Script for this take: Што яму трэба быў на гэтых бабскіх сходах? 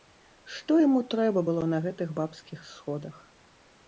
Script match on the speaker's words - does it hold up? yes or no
no